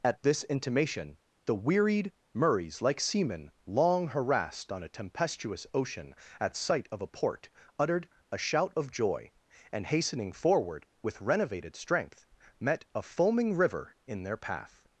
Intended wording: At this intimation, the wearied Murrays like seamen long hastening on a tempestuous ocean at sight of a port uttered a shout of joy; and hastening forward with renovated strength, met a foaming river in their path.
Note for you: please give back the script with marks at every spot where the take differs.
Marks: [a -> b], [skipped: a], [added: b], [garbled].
At this intimation, the wearied Murrays like seamen long [hastening -> harassed] on a tempestuous ocean at sight of a port uttered a shout of joy; and hastening forward with renovated strength, met a foaming river in their path.